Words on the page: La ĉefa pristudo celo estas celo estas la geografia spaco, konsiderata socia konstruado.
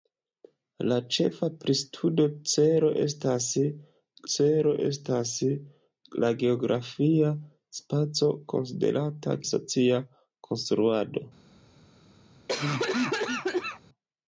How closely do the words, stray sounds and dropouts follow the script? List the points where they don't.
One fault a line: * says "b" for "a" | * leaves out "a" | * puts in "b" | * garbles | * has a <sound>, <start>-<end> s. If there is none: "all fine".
* has a cough, 12.5-13.8 s